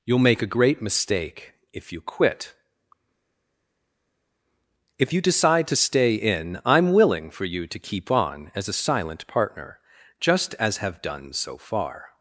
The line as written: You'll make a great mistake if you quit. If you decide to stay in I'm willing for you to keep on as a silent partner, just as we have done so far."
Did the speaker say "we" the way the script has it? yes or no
no